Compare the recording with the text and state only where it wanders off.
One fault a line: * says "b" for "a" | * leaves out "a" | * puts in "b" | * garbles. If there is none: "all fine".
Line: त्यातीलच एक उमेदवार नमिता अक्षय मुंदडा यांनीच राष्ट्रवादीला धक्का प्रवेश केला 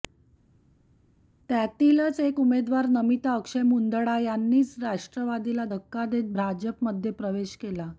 * puts in "देत भाजपमध्ये"